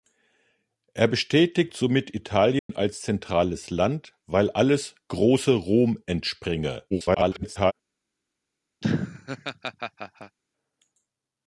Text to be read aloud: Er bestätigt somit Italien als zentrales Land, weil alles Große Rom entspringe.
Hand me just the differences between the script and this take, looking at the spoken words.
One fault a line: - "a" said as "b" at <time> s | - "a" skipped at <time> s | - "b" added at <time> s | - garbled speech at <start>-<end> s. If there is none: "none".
- garbled speech at 6.9-7.7 s